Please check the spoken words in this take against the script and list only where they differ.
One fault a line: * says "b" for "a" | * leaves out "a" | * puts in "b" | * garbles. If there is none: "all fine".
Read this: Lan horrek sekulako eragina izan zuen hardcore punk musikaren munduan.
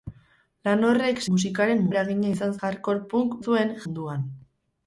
* says "musikaren" for "sekulako"
* leaves out "zuen"
* says "zuen" for "musikaren"